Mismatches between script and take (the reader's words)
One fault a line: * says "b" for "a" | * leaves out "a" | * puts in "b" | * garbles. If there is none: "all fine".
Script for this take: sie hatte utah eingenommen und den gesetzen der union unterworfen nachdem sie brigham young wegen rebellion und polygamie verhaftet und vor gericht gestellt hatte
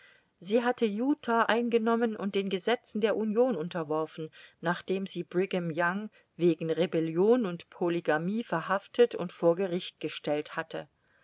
all fine